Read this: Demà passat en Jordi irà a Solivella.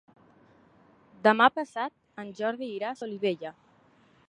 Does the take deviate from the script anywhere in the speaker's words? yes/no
no